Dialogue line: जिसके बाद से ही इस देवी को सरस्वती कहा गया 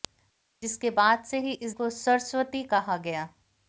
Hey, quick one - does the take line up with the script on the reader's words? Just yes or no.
no